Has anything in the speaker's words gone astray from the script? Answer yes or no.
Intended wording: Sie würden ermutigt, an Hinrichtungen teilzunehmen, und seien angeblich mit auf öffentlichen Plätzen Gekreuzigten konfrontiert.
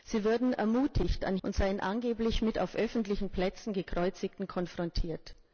yes